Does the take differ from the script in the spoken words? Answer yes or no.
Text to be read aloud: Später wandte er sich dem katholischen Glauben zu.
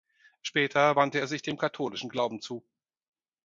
no